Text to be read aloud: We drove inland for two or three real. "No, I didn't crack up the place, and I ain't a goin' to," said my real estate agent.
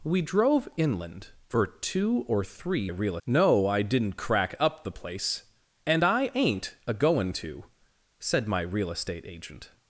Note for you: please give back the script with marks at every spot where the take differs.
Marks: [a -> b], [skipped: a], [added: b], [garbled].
We drove inland for two or three real. "No, I didn't crack up the place, and I ain't a goin' to," said my real estate agent.